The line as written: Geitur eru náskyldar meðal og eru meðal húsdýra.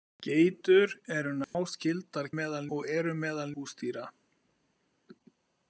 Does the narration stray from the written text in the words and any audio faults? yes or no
yes